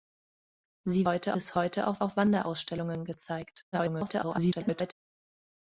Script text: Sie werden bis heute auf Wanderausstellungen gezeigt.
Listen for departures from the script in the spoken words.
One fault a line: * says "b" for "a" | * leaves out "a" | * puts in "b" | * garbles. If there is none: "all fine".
* says "heute" for "werden"
* puts in "auf"
* garbles